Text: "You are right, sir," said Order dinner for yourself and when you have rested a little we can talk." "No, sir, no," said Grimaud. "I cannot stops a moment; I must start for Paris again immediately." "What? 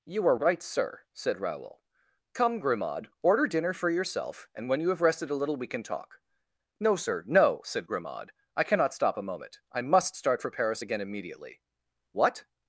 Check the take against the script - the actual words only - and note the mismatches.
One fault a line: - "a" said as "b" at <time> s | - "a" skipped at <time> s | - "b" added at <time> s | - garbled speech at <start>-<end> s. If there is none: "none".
- "Raoul Come Grimaud" added at 1.4 s
- "stops" said as "stop" at 8.9 s